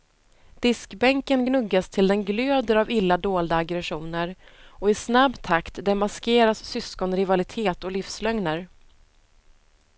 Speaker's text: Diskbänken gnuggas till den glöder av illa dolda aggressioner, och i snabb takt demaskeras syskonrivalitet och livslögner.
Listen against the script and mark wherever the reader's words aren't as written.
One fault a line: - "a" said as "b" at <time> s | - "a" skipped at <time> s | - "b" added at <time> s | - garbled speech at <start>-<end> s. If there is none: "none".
none